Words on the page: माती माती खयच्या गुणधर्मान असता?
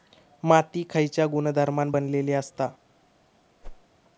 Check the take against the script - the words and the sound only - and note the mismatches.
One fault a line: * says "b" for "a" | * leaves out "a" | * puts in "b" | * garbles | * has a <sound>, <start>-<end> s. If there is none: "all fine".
* leaves out "माती"
* puts in "बनलेली"
* has a whoosh, 3.6-3.9 s